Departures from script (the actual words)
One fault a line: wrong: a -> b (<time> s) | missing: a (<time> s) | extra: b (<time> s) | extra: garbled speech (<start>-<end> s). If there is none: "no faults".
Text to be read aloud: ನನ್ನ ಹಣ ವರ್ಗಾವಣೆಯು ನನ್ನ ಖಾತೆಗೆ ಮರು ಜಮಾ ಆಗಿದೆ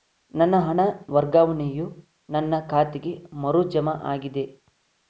no faults